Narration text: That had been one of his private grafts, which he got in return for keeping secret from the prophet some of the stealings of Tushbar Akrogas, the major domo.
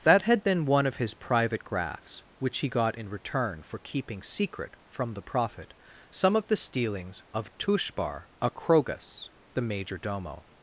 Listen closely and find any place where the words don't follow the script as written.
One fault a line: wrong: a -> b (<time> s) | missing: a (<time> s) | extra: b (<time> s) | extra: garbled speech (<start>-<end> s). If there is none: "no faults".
no faults